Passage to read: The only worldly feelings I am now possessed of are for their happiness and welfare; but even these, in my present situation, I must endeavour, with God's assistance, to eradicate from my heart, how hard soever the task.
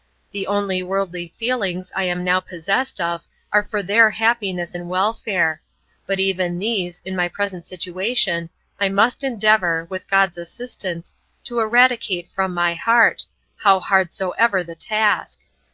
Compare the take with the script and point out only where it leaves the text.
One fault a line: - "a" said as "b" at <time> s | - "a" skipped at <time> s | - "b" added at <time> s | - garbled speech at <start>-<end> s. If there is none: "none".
none